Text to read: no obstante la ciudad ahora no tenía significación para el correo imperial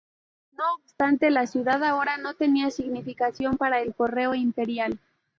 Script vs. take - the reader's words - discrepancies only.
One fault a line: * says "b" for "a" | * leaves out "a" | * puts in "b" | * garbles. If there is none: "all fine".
all fine